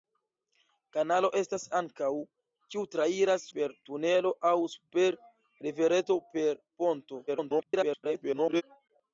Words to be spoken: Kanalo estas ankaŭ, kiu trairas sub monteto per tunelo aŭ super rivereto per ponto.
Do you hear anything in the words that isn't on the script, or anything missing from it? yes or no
yes